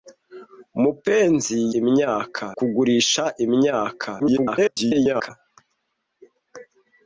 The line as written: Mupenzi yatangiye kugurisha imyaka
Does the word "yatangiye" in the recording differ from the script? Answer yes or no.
yes